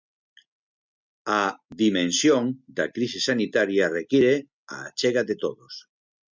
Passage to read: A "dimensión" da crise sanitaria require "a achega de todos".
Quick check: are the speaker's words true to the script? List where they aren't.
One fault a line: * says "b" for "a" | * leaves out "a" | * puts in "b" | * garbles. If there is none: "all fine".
all fine